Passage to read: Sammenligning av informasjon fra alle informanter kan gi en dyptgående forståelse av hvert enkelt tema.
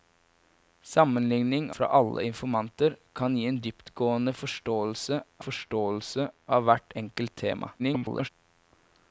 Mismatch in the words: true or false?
true